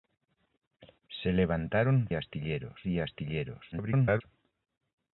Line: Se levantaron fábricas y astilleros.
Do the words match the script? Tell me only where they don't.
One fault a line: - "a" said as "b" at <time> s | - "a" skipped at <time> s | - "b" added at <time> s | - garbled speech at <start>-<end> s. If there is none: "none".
- "fábricas" said as "astilleros" at 2.1 s
- garbled speech at 3.7-4.2 s